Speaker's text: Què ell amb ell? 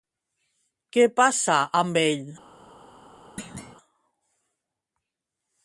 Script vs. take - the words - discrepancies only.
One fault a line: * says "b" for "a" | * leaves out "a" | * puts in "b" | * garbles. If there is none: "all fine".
* says "passa" for "ell"